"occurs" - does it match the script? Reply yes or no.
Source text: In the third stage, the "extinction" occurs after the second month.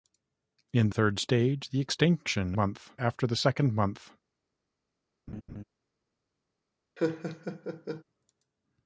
no